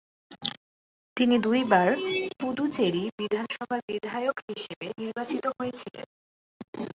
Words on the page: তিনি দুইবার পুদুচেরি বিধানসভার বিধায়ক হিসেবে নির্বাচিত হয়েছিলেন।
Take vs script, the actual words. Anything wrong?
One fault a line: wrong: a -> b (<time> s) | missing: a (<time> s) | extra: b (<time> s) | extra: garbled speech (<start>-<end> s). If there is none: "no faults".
no faults